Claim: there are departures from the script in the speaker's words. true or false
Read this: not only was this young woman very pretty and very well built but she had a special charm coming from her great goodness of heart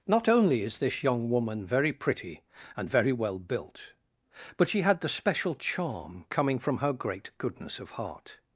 true